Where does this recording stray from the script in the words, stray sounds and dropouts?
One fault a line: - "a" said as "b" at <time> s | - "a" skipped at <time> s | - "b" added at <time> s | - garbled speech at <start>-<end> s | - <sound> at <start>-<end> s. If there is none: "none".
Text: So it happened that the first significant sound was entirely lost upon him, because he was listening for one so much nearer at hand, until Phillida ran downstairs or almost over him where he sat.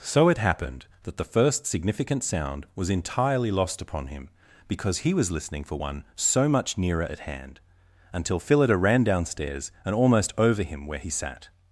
- "or" said as "and" at 9.8 s